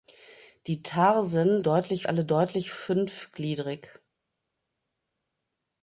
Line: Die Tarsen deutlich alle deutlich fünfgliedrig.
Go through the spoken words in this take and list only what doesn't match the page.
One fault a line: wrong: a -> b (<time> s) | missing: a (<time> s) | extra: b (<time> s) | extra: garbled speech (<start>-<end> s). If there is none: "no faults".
no faults